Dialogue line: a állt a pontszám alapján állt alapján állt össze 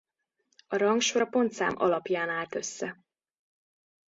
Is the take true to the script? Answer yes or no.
no